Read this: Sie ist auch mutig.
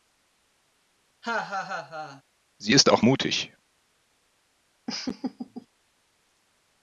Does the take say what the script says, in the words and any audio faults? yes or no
no